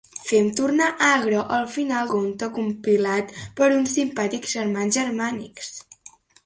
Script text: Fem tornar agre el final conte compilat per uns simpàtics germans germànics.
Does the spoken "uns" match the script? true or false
true